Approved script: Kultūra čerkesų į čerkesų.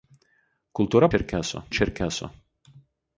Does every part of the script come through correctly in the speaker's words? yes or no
yes